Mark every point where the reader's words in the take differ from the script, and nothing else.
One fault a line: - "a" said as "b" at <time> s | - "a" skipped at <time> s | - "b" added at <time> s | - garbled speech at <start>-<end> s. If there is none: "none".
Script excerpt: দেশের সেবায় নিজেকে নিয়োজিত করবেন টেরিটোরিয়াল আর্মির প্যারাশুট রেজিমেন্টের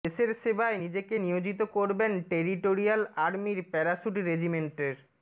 none